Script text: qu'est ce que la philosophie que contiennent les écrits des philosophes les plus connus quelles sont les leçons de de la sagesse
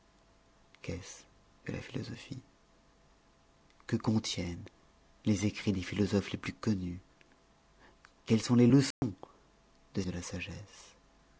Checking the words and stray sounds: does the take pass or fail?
fail